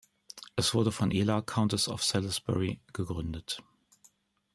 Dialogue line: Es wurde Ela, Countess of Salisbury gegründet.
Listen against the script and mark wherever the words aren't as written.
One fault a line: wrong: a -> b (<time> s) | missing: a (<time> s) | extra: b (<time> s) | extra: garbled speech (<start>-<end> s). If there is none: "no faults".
extra: von (0.9 s)